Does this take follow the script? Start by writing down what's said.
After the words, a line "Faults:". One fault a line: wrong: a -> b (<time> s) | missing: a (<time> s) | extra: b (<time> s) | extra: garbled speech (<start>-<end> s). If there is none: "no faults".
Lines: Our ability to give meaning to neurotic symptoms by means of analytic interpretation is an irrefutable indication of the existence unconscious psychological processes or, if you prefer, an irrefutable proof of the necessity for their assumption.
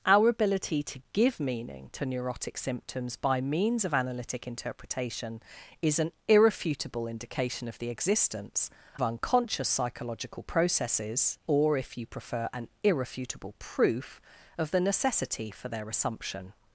Our ability to give meaning to neurotic symptoms by means of analytic interpretation is an irrefutable indication of the existence unconscious psychological processes or, if you prefer, an irrefutable proof of the necessity for their assumption.
Faults:
no faults